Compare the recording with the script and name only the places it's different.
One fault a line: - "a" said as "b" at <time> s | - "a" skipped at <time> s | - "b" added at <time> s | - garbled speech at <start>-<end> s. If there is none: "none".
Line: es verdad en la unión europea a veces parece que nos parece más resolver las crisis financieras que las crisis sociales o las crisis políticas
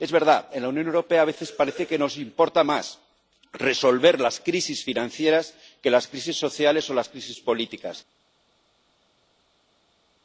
- "parece" said as "importa" at 2.2 s